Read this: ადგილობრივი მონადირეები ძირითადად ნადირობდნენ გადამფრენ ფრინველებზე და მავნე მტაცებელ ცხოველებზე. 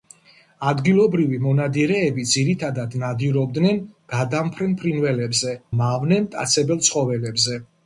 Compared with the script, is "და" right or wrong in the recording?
wrong